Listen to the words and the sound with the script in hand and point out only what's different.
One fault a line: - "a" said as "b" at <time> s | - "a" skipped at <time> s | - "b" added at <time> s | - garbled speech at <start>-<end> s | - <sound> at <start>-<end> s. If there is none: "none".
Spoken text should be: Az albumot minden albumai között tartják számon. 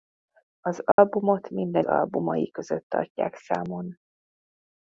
- dropout at 0.9-1.0 s